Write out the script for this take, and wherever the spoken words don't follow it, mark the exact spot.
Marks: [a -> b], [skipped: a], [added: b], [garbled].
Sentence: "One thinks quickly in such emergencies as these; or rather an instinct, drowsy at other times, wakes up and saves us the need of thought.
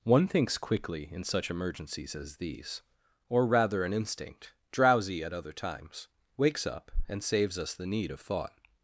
"One thinks quickly in such emergencies as these; or rather an instinct, drowsy at other times, wakes up and saves us the need of thought.